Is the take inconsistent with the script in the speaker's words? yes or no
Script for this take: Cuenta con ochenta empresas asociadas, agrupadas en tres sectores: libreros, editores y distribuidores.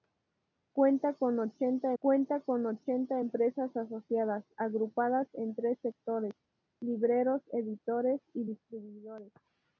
yes